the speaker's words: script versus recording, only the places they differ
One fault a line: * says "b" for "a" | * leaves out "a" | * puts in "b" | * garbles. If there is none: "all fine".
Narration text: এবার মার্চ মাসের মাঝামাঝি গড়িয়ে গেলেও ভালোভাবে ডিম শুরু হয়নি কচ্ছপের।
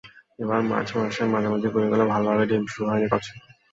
all fine